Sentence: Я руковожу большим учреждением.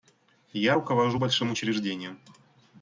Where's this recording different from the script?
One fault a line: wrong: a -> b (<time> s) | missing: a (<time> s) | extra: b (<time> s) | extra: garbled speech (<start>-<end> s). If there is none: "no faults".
no faults